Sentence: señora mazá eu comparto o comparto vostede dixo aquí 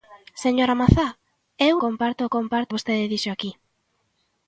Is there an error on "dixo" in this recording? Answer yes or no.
no